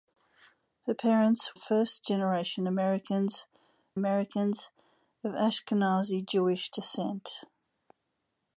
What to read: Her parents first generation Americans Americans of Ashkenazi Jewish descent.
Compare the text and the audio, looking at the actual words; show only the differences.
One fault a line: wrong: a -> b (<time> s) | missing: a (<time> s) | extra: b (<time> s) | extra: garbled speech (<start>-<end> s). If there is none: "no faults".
no faults